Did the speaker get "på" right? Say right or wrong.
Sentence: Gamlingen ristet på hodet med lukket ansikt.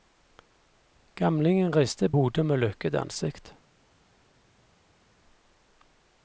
wrong